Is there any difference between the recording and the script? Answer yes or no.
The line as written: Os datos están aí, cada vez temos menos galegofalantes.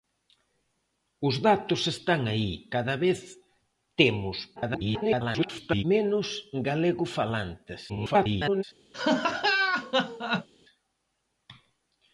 yes